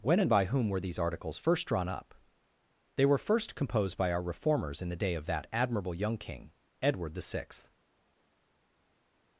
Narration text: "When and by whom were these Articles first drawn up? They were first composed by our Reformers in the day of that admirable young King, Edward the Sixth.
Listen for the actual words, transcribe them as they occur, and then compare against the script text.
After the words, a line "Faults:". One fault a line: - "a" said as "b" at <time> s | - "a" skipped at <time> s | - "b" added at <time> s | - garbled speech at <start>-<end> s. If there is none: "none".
"When and by whom were these Articles first drawn up? They were first composed by our Reformers in the day of that admirable young King, Edward the Sixth.
Faults:
none